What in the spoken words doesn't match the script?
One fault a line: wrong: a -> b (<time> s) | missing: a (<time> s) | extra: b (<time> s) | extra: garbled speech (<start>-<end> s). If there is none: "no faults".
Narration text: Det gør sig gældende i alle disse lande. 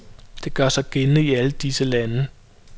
no faults